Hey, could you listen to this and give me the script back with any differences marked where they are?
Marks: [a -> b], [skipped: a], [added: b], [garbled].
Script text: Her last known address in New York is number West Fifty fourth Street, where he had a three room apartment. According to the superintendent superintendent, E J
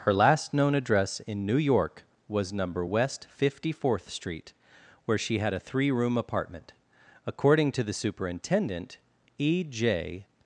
Her last known address in New York [is -> was] number West Fifty fourth Street, where [he -> she] had a three room apartment. According to the superintendent [skipped: superintendent,] E J